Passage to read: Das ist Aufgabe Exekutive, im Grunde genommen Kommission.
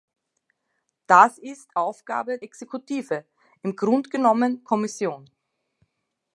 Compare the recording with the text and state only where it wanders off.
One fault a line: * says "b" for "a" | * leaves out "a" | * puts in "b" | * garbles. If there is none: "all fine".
all fine